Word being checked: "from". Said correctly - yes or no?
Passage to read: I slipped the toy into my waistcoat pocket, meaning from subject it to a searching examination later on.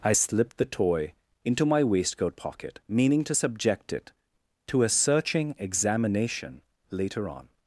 no